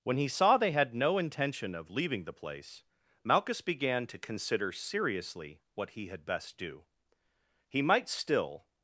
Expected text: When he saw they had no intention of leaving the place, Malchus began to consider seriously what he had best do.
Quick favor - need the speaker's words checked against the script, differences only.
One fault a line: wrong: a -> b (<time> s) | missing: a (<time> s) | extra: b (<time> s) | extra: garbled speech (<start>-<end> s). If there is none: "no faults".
extra: He might still (7.7 s)